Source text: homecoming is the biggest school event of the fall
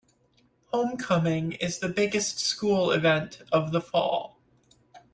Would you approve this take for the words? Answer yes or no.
yes